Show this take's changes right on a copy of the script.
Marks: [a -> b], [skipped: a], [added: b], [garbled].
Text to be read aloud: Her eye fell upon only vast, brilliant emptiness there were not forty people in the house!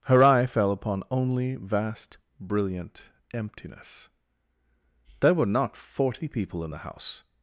Her eye fell upon only vast, brilliant emptiness there were not forty people in the house!